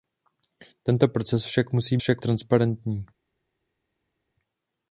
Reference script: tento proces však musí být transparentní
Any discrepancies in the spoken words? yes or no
yes